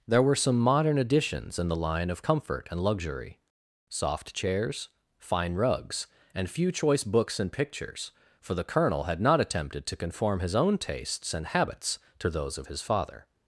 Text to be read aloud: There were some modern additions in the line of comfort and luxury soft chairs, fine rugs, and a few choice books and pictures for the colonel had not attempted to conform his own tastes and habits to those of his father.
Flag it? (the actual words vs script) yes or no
yes